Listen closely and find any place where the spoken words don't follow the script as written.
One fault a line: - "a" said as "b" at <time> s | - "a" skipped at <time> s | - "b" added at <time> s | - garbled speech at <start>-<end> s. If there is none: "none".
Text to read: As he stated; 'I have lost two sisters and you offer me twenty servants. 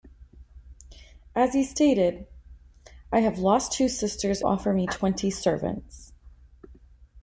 - "and you" skipped at 4.4 s